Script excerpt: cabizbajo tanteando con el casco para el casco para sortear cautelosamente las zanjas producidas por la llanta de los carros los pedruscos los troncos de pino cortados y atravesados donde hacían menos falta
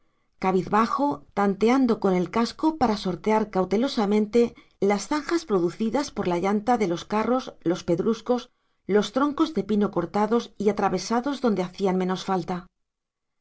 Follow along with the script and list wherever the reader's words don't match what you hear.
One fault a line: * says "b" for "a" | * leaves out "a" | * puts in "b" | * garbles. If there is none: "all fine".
* leaves out "el casco para"